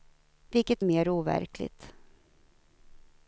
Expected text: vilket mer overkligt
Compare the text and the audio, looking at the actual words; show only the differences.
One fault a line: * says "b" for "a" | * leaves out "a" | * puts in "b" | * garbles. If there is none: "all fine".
all fine